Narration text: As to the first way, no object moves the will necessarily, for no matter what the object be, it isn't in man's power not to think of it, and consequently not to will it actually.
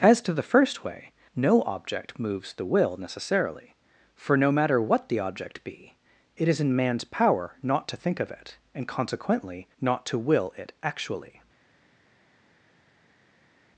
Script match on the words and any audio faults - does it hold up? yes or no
no